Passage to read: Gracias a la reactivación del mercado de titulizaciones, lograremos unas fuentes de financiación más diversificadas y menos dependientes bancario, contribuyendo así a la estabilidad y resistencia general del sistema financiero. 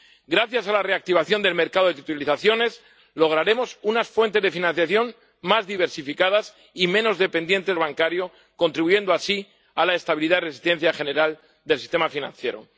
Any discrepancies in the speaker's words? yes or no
no